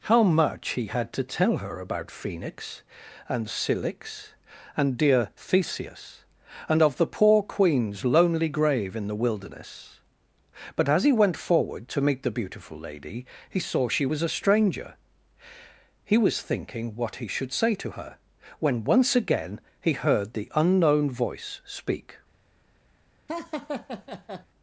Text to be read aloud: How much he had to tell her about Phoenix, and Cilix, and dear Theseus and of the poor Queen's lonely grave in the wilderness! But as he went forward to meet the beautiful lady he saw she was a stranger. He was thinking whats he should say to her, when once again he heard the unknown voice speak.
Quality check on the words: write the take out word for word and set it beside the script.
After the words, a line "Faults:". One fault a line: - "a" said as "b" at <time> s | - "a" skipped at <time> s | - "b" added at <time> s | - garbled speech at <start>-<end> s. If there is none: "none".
How much he had to tell her about Phoenix, and Cilix, and dear Theseus and of the poor Queen's lonely grave in the wilderness! But as he went forward to meet the beautiful lady he saw she was a stranger. He was thinking what he should say to her, when once again he heard the unknown voice speak.
Faults:
- "whats" said as "what" at 16.9 s